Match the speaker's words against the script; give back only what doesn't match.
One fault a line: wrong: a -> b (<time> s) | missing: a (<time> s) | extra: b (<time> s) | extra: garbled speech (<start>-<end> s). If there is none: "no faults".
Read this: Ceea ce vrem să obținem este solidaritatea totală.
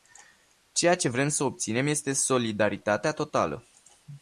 no faults